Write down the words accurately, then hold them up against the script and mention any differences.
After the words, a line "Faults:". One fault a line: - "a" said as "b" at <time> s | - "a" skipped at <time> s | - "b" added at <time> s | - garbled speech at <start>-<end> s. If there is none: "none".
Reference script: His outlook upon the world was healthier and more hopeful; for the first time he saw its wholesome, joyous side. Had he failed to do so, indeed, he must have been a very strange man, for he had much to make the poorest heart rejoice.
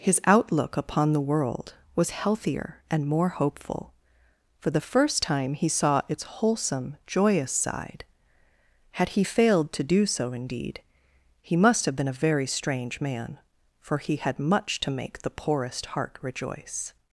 His outlook upon the world was healthier and more hopeful; for the first time he saw its wholesome, joyous side. Had he failed to do so, indeed, he must have been a very strange man, for he had much to make the poorest heart rejoice.
Faults:
none